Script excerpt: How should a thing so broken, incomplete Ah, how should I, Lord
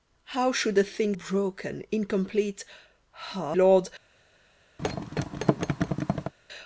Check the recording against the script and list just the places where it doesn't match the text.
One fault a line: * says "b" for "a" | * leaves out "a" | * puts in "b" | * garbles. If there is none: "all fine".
* leaves out "so"
* leaves out "how should I"